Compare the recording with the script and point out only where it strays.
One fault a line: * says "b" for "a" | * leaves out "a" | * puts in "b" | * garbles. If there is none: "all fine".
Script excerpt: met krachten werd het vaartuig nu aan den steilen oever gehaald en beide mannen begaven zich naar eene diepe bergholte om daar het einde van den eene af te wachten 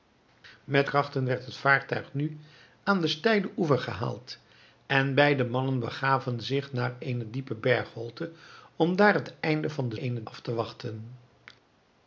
all fine